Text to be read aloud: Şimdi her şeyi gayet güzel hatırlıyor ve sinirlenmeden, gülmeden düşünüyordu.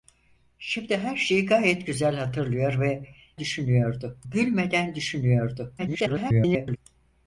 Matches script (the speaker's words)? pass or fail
fail